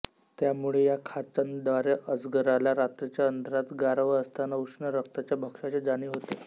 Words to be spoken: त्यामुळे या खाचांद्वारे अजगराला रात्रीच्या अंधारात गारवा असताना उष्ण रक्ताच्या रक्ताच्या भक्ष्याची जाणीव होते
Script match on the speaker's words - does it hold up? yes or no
no